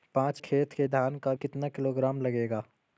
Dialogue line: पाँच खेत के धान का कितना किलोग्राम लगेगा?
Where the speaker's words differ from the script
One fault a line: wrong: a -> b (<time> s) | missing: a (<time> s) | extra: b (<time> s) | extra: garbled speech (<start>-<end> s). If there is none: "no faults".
no faults